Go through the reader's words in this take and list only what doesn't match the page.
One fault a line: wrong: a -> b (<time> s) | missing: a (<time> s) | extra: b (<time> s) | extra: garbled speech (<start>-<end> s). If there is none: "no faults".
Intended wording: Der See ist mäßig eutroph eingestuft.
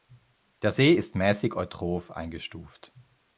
no faults